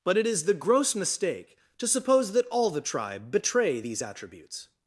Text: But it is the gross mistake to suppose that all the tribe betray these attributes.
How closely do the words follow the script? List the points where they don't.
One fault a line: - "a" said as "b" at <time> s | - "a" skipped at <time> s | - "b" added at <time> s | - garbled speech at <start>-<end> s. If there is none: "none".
none